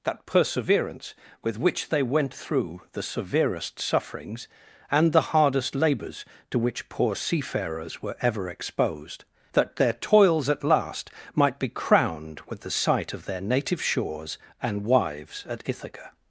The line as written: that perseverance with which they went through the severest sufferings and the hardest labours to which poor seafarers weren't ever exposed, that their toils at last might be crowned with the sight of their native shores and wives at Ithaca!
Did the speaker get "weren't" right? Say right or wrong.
wrong